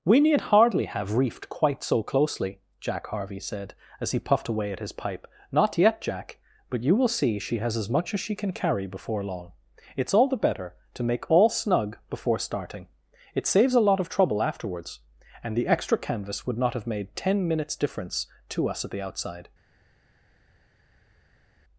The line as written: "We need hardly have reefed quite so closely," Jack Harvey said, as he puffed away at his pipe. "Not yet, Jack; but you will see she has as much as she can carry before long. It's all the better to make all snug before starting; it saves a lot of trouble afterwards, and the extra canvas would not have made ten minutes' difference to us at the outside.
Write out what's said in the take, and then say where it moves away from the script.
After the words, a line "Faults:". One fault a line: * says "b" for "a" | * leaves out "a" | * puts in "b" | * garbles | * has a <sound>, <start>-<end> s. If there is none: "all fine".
"We need hardly have reefed quite so closely," Jack Harvey said, as he puffed away at his pipe. "Not yet, Jack; but you will see she has as much as she can carry before long. It's all the better to make all snug before starting; it saves a lot of trouble afterwards, and the extra canvas would not have made ten minutes' difference to us at the outside.
Faults:
all fine